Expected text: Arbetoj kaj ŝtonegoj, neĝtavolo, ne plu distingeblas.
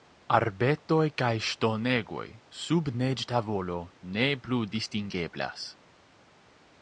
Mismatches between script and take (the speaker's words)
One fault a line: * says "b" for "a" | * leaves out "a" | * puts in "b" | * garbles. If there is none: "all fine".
* puts in "sub"